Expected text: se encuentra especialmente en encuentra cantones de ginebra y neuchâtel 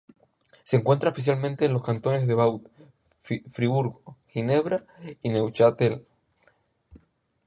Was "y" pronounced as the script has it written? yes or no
yes